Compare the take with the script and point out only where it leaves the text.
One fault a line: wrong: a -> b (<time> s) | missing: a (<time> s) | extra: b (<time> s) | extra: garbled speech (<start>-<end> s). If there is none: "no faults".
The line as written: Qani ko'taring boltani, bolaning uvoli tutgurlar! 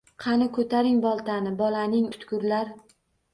missing: uvoli (2.1 s)